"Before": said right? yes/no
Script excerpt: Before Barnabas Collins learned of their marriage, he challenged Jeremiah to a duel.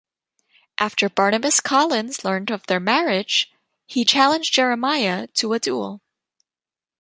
no